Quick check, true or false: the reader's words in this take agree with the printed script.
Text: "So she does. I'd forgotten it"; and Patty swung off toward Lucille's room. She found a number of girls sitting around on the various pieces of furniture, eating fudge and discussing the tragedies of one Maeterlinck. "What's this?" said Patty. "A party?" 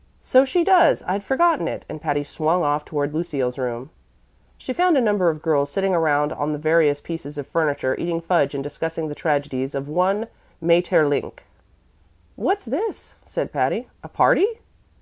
true